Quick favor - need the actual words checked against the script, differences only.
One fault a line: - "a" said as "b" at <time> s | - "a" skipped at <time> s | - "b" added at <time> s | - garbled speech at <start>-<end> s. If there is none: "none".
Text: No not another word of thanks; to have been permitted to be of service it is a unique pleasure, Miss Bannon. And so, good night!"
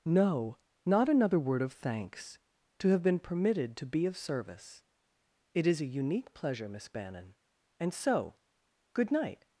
none